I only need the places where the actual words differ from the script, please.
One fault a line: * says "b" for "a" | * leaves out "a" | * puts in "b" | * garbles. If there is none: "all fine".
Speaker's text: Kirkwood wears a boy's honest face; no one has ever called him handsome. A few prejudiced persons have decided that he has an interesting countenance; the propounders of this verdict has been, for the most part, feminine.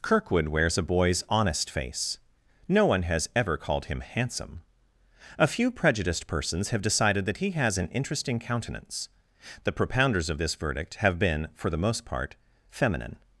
* says "have" for "has"